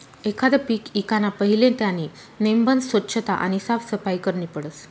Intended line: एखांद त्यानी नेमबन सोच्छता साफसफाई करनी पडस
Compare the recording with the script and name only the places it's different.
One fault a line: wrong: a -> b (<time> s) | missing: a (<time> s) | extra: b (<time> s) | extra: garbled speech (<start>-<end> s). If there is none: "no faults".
extra: पीक ईकाना पहिले (0.7 s)
extra: आणि (3.3 s)